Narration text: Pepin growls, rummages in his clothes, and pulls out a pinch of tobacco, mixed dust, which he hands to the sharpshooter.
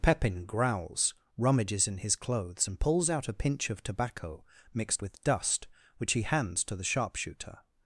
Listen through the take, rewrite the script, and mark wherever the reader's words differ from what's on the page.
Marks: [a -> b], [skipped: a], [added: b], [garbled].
Pepin growls, rummages in his clothes, and pulls out a pinch of tobacco, mixed [added: with] dust, which he hands to the sharpshooter.